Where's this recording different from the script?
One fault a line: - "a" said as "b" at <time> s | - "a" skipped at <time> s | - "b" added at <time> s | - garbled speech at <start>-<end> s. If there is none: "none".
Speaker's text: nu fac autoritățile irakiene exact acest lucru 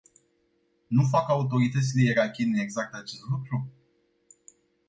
none